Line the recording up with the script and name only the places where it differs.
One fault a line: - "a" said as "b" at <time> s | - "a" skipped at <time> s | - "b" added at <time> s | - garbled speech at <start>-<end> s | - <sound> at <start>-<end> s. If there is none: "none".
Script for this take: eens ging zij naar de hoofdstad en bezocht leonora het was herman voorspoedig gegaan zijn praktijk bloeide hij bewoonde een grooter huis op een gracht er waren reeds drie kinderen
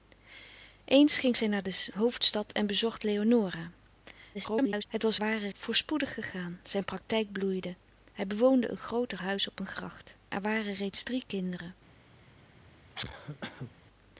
- garbled speech at 4.3-4.8 s
- "herman" said as "waren" at 5.2 s
- cough at 12.9-13.7 s